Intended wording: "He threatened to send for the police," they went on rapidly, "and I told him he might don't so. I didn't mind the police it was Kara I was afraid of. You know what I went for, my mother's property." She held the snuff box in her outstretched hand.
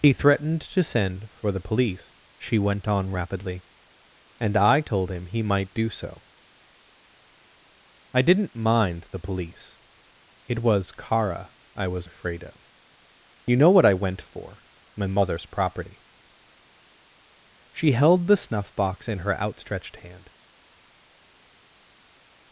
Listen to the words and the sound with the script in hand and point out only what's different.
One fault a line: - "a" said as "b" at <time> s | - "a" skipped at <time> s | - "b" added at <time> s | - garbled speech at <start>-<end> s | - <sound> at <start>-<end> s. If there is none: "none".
- "they" said as "she" at 2.4 s
- "don't" said as "do" at 5.8 s